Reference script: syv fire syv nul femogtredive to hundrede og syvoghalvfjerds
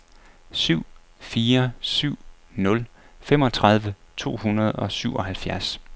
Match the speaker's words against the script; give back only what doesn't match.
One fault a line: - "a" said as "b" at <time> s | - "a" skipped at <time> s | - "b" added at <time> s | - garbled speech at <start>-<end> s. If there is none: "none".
none